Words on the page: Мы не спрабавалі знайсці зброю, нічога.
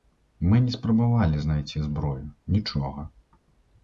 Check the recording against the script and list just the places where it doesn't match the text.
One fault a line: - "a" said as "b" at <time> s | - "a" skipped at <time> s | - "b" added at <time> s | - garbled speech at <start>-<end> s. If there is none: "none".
none